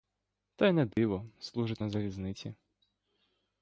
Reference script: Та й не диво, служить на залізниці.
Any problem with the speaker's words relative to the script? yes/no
no